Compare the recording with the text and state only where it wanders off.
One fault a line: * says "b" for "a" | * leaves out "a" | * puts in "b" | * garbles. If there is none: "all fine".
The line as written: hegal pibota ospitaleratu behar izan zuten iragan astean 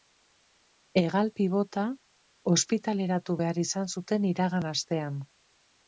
all fine